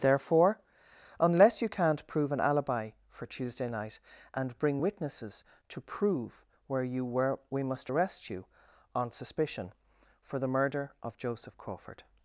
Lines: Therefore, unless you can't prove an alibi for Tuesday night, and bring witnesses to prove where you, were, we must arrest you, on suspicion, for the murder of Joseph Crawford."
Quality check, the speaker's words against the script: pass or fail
pass